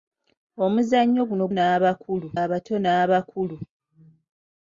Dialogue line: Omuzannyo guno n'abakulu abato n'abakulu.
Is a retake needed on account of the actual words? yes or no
no